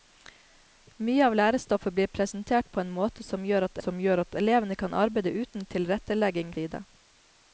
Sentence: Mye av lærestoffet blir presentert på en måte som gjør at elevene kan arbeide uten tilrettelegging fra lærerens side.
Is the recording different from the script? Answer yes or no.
yes